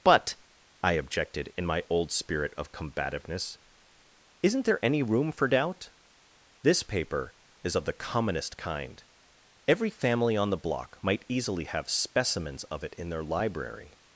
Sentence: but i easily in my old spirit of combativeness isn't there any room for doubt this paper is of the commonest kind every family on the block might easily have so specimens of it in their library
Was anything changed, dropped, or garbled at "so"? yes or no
yes